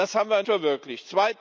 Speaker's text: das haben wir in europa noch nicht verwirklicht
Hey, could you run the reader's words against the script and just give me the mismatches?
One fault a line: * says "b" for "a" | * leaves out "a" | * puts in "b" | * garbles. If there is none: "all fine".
* leaves out "europa noch nicht"